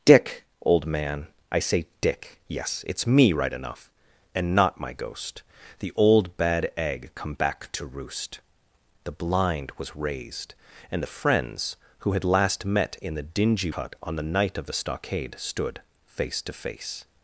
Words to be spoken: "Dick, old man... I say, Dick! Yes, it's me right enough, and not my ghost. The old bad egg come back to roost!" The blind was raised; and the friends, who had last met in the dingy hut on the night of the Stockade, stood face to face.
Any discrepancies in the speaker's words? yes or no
no